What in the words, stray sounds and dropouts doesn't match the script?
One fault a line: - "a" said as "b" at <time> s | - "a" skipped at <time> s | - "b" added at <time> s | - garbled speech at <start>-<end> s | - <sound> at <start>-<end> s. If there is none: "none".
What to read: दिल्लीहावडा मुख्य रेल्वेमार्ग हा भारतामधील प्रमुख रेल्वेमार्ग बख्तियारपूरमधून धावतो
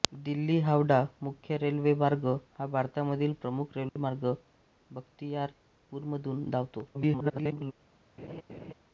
- dropout at 3.9-4.0 s
- garbled speech at 6.9-7.7 s
- laugh at 8.2-8.7 s